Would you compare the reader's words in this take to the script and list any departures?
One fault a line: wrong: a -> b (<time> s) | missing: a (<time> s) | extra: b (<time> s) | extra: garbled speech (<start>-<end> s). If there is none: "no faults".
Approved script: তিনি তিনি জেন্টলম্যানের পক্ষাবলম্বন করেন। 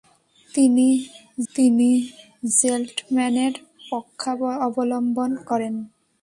no faults